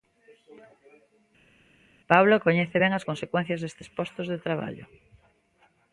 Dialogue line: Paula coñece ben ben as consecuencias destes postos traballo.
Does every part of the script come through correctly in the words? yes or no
no